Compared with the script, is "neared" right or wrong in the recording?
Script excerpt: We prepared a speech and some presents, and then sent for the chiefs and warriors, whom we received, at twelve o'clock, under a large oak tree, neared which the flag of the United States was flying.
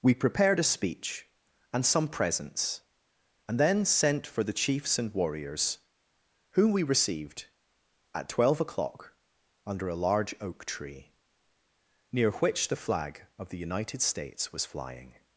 wrong